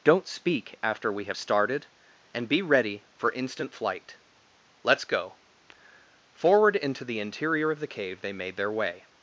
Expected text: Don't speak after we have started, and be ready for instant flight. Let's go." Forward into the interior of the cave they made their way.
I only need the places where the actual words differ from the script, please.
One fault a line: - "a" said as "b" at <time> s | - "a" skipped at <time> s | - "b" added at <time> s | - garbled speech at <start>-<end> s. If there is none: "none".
none